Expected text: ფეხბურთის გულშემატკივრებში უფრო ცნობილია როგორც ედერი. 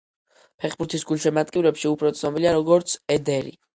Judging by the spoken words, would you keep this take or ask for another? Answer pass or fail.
pass